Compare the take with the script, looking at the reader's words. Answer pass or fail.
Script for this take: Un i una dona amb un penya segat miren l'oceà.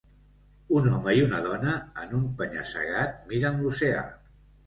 fail